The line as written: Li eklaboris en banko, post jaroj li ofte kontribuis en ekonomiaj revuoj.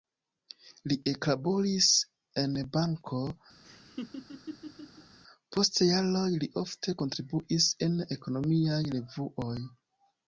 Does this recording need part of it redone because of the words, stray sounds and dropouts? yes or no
yes